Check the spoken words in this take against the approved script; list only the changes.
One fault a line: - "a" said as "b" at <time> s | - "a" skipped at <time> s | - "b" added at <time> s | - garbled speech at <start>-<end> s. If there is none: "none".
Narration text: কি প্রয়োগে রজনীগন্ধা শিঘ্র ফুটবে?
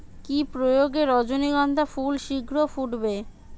- "ফুল" added at 1.9 s